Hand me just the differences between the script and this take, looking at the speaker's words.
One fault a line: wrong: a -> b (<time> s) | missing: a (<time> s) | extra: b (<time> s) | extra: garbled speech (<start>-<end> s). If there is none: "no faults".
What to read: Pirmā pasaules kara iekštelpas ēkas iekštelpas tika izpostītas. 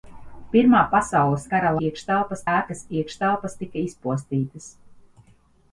no faults